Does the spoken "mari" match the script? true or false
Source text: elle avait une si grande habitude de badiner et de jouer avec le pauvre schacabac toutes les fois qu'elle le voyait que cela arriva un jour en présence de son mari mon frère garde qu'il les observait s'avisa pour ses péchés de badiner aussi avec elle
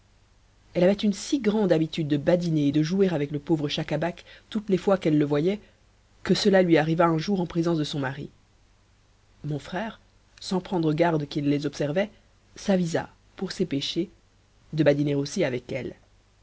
true